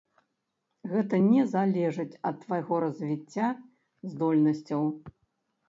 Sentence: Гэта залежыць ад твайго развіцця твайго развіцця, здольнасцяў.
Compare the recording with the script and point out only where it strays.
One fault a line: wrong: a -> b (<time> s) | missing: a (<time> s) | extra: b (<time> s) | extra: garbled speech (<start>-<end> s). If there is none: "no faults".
extra: не (1.2 s)
missing: твайго развіцця (3.5 s)